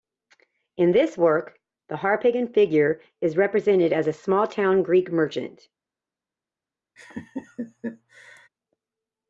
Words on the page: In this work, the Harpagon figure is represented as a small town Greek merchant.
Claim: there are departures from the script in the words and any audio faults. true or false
true